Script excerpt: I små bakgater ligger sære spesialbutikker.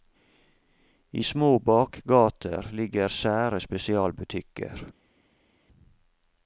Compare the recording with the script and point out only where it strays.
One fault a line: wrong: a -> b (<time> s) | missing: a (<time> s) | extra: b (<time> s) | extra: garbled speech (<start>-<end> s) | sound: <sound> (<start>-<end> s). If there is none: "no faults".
no faults